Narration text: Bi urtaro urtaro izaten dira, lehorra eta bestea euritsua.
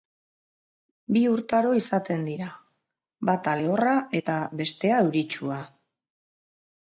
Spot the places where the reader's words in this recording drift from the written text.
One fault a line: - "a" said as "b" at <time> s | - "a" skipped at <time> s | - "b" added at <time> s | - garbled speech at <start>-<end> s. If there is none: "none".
- "urtaro" skipped at 1.7 s
- "bata" added at 3.3 s